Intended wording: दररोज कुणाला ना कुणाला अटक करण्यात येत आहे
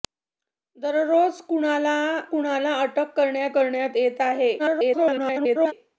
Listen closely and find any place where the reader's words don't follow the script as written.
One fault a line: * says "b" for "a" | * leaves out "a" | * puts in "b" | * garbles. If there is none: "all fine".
* leaves out "ना"
* puts in "करण्यात"
* garbles